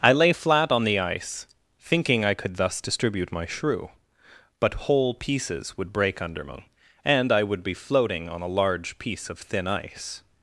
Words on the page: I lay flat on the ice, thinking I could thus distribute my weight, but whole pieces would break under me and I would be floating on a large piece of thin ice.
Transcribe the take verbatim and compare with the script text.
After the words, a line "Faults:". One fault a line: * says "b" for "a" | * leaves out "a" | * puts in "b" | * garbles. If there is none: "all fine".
I lay flat on the ice, thinking I could thus distribute my shrew, but whole pieces would break under me and I would be floating on a large piece of thin ice.
Faults:
* says "shrew" for "weight"